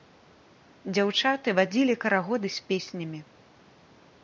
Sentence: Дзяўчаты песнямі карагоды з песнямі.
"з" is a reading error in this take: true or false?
false